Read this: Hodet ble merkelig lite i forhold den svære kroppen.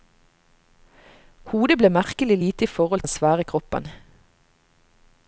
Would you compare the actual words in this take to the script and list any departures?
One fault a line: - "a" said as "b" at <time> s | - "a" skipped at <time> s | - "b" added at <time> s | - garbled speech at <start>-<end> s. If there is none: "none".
none